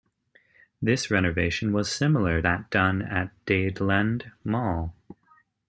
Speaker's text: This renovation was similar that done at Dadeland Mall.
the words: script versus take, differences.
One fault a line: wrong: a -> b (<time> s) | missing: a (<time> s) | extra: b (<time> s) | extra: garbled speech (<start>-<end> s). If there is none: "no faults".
no faults